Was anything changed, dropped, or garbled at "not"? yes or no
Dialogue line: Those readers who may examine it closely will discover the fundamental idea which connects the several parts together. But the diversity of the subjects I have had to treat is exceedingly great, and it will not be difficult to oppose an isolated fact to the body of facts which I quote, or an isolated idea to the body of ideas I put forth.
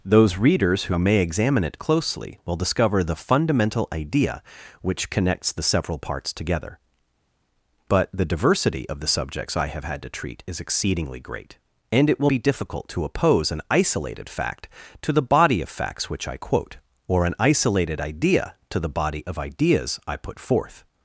yes